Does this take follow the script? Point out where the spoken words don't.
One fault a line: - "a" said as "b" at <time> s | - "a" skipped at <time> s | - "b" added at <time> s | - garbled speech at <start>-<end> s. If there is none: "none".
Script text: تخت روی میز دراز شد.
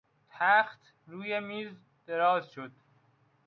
none